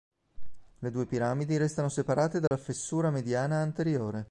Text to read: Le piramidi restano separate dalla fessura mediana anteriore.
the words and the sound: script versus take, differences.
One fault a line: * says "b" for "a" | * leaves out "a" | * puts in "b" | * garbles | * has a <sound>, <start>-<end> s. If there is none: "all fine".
* puts in "due"
* has a dropout, 2.5-2.5 s